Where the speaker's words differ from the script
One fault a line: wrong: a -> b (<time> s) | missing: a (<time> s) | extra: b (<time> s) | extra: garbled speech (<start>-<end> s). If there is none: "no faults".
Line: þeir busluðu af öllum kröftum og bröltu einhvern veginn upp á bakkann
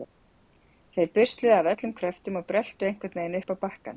no faults